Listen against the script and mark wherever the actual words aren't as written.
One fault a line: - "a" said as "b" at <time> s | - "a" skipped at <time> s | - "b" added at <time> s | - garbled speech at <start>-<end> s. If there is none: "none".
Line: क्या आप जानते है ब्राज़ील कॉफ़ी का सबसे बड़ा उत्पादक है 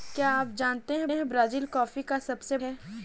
- "है" added at 1.1 s
- "बड़ा उत्पादक" skipped at 2.6 s